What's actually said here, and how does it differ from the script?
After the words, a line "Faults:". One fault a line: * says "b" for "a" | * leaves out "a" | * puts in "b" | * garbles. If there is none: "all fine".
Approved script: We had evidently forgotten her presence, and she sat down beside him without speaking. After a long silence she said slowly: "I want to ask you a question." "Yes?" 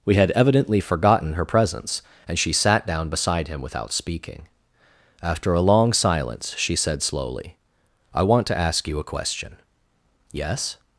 We had evidently forgotten her presence, and she sat down beside him without speaking. After a long silence she said slowly: "I want to ask you a question." "Yes?"
Faults:
all fine